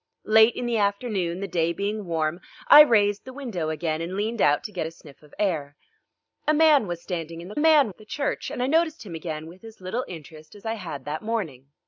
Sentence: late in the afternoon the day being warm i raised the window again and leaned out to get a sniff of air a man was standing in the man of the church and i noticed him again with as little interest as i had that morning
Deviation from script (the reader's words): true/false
false